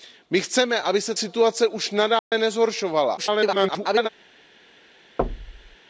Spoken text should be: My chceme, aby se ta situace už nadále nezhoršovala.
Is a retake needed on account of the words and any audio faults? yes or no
yes